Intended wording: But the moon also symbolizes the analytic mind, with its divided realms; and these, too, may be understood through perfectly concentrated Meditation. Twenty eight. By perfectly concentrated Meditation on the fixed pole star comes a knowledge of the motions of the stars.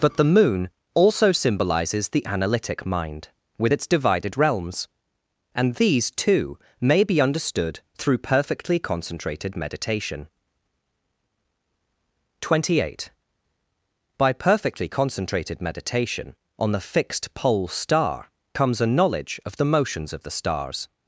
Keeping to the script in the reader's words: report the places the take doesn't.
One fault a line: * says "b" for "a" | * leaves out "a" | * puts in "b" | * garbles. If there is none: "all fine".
all fine